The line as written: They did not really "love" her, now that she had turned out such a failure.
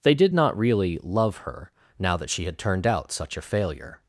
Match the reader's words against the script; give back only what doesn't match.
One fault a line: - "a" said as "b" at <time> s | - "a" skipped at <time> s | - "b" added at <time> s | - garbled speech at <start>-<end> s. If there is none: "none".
none